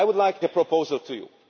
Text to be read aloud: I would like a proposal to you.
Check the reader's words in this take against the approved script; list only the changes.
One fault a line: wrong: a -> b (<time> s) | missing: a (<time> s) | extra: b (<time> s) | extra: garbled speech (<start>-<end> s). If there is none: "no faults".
no faults